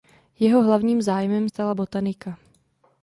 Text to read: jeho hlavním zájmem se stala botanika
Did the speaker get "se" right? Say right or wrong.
wrong